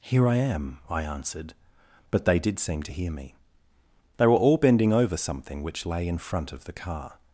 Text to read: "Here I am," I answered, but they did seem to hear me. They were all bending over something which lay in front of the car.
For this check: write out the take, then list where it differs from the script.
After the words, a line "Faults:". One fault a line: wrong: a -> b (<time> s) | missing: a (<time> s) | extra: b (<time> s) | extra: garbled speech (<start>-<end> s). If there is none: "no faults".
"Here I am," I answered, but they did seem to hear me. They were all bending over something which lay in front of the car.
Faults:
no faults